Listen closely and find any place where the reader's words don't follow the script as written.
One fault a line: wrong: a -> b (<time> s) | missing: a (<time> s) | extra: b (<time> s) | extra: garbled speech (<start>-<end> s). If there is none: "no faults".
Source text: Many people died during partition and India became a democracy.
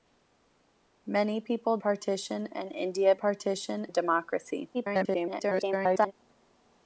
missing: died during (1.8 s)
wrong: became -> partition (3.1 s)
extra: garbled speech (4.7-6.1 s)